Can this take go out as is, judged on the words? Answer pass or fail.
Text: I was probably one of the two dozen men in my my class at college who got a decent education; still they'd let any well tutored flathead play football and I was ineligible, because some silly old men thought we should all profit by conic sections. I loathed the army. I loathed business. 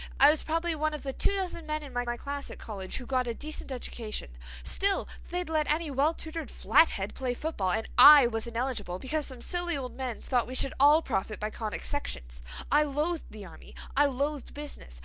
pass